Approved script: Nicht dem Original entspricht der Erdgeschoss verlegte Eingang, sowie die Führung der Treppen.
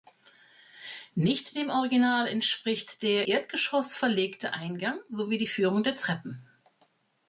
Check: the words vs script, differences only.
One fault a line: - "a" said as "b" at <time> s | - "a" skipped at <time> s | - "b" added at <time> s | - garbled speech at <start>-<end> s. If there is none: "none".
none